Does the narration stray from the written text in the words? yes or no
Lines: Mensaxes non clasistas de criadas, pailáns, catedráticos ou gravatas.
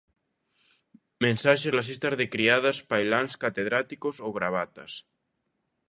yes